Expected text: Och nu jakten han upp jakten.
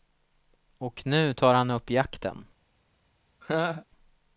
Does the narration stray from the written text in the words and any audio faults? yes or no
yes